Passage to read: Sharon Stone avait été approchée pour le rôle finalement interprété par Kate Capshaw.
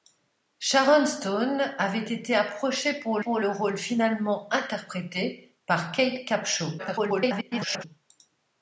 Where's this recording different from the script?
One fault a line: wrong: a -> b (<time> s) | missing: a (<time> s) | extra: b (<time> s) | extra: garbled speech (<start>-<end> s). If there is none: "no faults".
extra: pour (3.2 s)
extra: garbled speech (6.8-7.8 s)